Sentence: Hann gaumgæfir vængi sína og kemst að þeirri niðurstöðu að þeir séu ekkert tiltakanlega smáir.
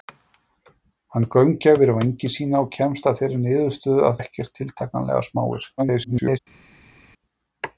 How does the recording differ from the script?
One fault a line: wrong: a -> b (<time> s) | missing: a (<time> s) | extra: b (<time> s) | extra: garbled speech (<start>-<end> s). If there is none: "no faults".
missing: þeir séu (4.2 s)
extra: garbled speech (5.8-6.4 s)